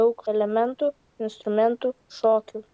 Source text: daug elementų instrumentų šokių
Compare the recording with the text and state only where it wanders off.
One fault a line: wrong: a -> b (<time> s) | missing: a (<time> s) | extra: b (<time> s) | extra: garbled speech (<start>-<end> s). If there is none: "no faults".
no faults